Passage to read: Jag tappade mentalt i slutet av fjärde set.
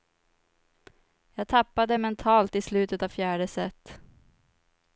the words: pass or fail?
pass